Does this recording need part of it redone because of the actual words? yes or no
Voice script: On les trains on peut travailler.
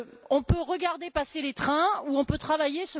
yes